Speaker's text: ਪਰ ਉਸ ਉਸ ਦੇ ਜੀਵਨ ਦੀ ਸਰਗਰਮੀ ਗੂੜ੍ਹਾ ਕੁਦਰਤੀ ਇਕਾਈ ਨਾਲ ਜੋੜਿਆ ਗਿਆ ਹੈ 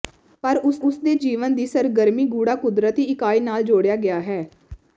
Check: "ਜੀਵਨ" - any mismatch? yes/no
no